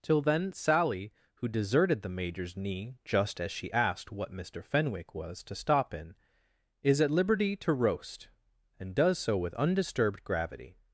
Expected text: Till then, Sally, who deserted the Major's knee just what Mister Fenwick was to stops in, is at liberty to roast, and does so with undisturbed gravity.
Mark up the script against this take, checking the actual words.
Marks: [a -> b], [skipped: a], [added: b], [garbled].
Till then, Sally, who deserted the Major's knee just [added: as she asked] what Mister Fenwick was to [stops -> stop] in, is at liberty to roast, and does so with undisturbed gravity.